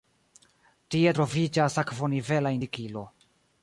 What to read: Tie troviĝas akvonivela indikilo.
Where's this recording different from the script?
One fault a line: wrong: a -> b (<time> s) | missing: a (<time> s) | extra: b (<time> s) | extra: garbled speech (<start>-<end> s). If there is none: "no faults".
no faults